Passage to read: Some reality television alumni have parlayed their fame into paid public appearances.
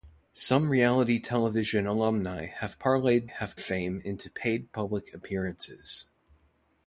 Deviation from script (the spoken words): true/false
true